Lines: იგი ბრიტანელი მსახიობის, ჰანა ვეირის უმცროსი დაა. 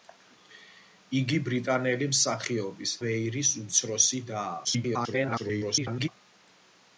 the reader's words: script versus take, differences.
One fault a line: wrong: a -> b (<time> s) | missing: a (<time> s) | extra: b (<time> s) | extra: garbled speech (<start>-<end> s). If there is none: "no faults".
missing: ჰანა (2.9 s)
extra: garbled speech (4.6-6.1 s)